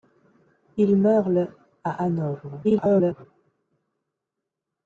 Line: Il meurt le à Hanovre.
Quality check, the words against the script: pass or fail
fail